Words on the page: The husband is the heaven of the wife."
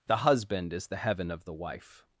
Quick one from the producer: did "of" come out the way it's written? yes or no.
yes